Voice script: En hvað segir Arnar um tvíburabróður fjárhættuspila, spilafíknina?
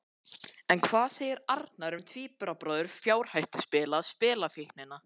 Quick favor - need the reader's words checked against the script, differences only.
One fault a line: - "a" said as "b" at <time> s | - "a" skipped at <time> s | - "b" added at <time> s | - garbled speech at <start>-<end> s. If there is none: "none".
none